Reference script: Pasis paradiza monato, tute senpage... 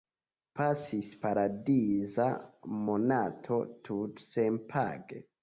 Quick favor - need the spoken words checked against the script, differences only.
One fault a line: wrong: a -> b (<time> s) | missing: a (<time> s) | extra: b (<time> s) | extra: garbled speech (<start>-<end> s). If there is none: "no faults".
no faults